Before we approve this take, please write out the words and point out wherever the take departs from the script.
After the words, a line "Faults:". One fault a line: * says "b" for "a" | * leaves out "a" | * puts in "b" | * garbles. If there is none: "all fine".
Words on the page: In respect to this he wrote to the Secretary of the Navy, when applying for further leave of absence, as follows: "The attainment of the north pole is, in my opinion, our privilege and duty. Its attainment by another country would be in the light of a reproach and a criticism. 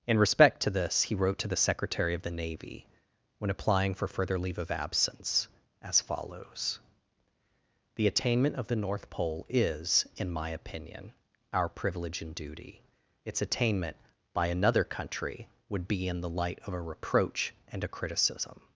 In respect to this he wrote to the Secretary of the Navy, when applying for further leave of absence, as follows: "The attainment of the north pole is, in my opinion, our privilege and duty. Its attainment by another country would be in the light of a reproach and a criticism.
Faults:
all fine